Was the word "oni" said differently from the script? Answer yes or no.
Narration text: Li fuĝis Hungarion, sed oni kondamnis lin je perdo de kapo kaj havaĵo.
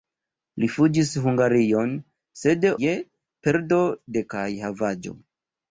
yes